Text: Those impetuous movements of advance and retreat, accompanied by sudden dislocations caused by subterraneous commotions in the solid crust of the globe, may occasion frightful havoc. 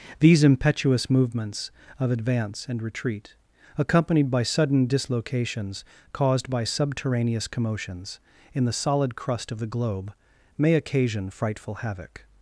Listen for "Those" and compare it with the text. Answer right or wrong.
wrong